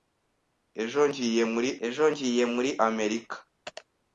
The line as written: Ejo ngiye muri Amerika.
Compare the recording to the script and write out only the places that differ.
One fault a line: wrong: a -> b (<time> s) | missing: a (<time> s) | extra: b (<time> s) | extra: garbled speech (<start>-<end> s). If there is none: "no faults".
extra: ejo ngiye muri (1.8 s)